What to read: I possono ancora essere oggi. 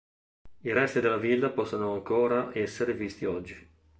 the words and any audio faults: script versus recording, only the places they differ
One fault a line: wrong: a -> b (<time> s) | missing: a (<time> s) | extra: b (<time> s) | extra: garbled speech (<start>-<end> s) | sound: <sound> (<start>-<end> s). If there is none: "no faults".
extra: resti della villa (0.7 s)
extra: visti (2.9 s)